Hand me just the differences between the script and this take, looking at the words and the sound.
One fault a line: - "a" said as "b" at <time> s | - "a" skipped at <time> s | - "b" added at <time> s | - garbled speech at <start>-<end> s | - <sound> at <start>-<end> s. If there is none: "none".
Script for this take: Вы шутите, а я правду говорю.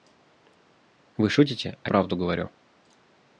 - "я" skipped at 1.9 s